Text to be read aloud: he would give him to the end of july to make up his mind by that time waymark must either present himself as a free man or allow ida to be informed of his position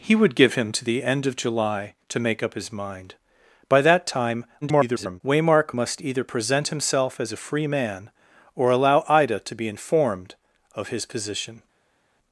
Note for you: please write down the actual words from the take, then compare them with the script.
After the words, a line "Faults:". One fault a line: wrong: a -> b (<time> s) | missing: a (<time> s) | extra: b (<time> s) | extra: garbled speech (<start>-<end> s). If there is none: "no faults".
he would give him to the end of july to make up his mind by that time [garbled] waymark must either present himself as a free man or allow ida to be informed of his position
Faults:
extra: garbled speech (4.6-5.2 s)